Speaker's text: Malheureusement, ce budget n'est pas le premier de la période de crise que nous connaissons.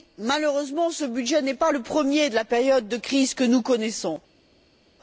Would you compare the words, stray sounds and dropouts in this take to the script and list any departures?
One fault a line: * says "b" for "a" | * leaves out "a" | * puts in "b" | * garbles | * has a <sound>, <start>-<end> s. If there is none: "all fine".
all fine